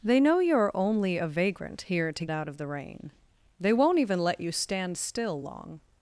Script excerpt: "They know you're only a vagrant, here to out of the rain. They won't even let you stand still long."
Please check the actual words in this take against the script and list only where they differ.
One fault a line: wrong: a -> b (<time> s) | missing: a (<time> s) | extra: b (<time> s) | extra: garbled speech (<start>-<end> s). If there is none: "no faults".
no faults